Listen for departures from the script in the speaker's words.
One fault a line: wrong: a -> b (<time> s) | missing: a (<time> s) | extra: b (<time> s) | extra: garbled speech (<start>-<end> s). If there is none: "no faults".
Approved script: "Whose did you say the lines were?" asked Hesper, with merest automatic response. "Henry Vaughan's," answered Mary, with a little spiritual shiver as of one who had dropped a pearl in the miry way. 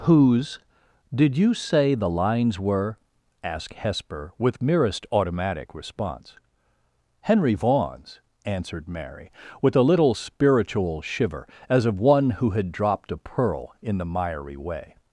no faults